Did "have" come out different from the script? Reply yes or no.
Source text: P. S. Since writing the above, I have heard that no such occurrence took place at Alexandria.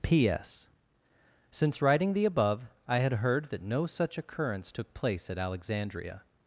yes